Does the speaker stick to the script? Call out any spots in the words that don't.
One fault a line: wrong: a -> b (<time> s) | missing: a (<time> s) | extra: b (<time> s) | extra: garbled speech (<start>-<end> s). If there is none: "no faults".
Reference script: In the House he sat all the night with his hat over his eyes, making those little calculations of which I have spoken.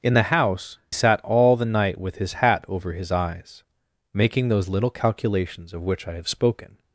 missing: he (0.8 s)